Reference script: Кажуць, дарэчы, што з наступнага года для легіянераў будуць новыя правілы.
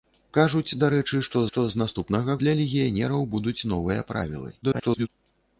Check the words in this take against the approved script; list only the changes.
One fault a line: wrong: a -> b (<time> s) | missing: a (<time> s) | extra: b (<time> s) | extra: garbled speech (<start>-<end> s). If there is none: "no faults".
extra: што (1.5 s)
missing: года (2.4 s)
extra: garbled speech (4.6-5.1 s)